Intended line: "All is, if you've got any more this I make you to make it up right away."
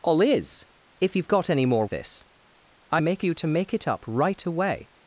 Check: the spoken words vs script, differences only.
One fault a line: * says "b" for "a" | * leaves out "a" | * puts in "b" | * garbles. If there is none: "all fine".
all fine